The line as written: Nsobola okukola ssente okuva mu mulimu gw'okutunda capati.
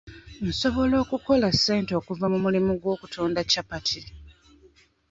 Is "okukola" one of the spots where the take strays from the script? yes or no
no